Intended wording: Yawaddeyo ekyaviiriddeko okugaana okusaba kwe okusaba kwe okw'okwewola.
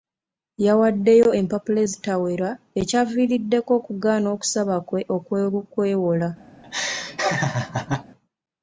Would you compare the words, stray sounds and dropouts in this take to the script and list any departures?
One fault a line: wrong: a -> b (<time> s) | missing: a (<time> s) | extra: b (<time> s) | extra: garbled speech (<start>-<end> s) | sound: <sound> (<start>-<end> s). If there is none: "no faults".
extra: empapula ezitawera (1.4 s)
missing: okusaba kwe (5.0 s)
sound: laugh (6.6-8.0 s)